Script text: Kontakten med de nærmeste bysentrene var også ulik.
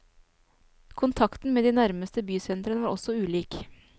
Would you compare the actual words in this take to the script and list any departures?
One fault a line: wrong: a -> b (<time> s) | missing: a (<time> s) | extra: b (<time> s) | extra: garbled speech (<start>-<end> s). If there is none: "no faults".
no faults